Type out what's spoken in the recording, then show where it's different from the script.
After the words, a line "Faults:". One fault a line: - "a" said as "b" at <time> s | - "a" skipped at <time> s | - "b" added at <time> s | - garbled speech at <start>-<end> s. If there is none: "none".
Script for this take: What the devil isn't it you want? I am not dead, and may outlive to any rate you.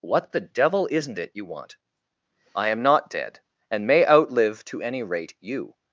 What the devil isn't it you want? I am not dead, and may outlive to any rate you.
Faults:
none